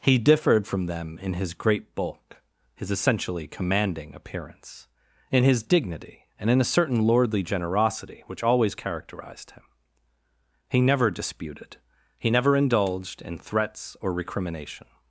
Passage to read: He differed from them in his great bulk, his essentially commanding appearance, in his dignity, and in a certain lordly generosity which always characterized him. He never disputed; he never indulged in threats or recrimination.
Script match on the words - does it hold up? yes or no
yes